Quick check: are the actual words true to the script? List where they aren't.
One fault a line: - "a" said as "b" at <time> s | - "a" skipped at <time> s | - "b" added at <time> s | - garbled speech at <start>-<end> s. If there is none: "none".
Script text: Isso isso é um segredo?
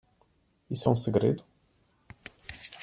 - "isso" skipped at 0.9 s